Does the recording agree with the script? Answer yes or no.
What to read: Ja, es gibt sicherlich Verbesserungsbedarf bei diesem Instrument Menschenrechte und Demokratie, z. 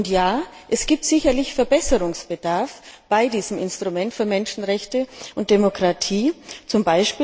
no